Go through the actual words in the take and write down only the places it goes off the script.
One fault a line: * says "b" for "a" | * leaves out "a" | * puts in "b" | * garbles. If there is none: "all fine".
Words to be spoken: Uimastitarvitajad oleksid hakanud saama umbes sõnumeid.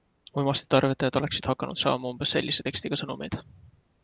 * puts in "sellise tekstiga"